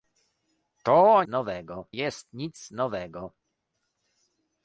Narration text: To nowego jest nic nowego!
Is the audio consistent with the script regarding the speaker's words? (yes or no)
yes